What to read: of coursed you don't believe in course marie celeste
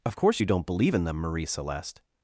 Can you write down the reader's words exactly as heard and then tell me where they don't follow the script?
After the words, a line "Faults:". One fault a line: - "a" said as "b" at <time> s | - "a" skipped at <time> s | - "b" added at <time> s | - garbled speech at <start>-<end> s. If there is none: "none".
of course you don't believe in them marie celeste
Faults:
- "coursed" said as "course" at 0.2 s
- "course" said as "them" at 1.0 s